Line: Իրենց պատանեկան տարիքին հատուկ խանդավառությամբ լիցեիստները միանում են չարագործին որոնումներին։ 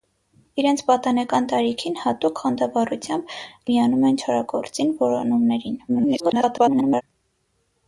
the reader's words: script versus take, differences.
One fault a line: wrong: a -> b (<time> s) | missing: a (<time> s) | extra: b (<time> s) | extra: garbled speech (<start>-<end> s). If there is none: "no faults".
missing: լիցեիստները (3.4 s)
extra: garbled speech (5.9-7.0 s)